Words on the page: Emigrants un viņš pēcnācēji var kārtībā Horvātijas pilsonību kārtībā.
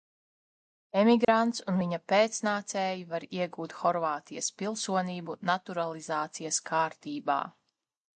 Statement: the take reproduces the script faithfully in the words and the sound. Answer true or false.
false